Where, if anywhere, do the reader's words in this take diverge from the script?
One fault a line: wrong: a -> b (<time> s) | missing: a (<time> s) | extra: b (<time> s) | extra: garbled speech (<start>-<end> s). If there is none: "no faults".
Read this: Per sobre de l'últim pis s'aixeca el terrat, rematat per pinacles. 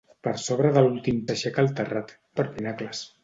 missing: pis (1.2 s)
missing: rematat (2.2 s)